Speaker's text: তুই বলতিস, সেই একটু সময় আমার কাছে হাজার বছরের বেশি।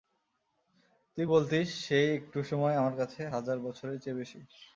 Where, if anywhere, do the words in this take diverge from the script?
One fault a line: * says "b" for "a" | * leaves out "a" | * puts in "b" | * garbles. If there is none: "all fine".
* puts in "চেয়ে"